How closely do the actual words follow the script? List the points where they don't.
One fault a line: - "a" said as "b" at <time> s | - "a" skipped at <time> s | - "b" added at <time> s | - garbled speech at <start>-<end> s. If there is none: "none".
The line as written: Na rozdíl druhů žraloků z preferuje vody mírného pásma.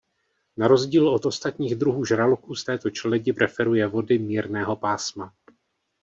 - "od ostatních" added at 1.1 s
- "této čeledi" added at 2.6 s